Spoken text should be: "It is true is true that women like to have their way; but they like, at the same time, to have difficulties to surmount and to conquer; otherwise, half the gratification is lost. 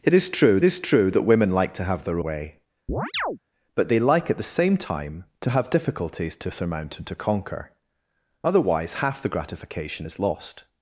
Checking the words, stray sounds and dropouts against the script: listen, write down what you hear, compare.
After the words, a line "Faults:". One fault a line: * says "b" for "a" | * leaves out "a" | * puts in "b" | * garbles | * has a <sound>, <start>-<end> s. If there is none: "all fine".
"It is true is true that women like to have their way; but they like, at the same time, to have difficulties to surmount and to conquer; otherwise, half the gratification is lost.
Faults:
* has a chirp, 2.9-3.4 s